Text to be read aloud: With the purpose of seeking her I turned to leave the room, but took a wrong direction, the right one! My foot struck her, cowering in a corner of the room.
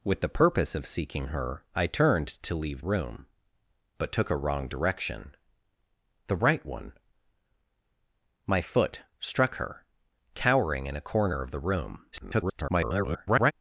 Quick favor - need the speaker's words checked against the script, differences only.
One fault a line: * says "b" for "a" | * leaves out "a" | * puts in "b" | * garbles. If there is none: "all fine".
* leaves out "the"
* garbles